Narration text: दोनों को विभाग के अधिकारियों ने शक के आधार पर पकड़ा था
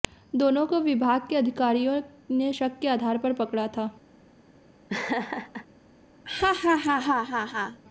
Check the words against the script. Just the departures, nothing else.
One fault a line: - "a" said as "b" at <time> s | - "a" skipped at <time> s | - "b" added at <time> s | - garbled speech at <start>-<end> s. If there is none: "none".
none